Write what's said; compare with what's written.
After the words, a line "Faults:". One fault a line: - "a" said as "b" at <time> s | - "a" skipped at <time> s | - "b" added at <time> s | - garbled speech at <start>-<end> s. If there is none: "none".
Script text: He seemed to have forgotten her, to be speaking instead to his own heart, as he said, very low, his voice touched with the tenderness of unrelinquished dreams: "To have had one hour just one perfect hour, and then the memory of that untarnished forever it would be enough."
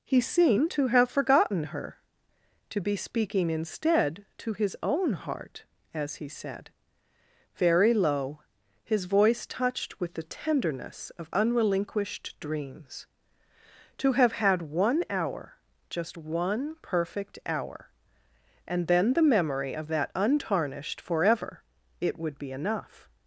He seemed to have forgotten her, to be speaking instead to his own heart, as he said, very low, his voice touched with the tenderness of unrelinquished dreams: "To have had one hour just one perfect hour, and then the memory of that untarnished forever it would be enough."
Faults:
none